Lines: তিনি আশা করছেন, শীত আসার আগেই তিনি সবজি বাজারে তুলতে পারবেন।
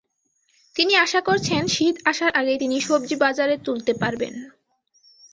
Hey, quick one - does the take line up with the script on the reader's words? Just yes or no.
yes